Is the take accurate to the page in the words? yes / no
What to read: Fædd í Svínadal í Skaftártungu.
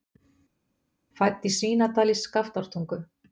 yes